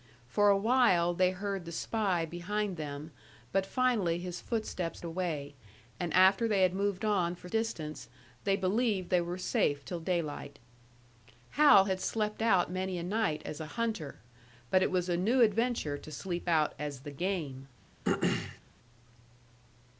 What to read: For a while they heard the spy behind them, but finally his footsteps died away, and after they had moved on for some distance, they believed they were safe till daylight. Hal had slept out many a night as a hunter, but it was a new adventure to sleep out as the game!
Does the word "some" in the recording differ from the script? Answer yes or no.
yes